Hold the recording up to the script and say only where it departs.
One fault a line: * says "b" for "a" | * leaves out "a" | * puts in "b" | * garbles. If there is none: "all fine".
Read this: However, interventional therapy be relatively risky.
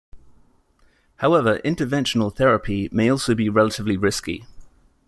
* puts in "may also"